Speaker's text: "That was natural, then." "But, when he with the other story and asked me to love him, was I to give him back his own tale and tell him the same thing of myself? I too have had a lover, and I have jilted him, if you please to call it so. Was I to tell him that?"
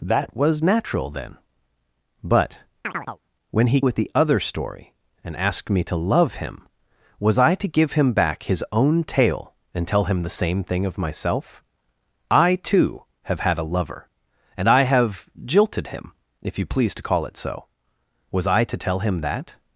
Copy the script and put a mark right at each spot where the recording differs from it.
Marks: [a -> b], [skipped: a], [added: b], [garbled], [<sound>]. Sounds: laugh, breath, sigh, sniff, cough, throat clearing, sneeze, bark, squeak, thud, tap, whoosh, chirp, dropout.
"That was natural, then." "But, [chirp] when he with the other story and asked me to love him, was I to give him back his own tale and tell him the same thing of myself? I too have had a lover, and I have jilted him, if you please to call it so. Was I to tell him that?"